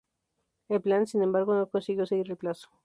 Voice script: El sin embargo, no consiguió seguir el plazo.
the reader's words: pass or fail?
fail